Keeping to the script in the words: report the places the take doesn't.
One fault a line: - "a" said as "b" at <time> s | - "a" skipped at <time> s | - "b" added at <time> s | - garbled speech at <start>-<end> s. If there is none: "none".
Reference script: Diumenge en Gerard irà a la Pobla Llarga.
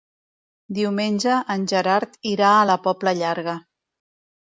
none